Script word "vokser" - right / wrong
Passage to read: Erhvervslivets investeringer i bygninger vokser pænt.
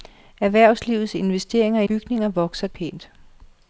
right